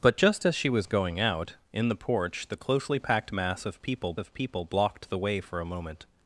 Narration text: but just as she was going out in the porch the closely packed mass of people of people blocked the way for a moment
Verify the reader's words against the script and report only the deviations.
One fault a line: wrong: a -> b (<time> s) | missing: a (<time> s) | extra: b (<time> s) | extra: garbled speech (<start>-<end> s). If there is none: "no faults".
no faults